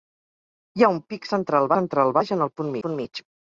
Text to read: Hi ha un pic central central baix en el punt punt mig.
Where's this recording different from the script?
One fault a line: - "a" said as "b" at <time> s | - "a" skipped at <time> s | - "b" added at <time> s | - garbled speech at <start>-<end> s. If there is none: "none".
none